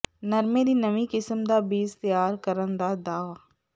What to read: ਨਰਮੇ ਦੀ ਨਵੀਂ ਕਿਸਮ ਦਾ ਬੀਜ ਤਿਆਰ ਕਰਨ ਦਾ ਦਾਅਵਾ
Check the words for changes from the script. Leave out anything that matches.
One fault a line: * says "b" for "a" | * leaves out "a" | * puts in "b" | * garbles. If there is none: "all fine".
all fine